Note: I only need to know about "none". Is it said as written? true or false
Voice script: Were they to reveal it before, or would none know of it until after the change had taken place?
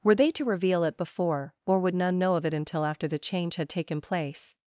true